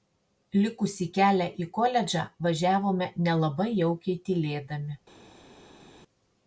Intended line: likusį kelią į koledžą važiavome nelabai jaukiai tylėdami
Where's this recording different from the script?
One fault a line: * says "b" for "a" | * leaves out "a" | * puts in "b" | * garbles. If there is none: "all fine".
all fine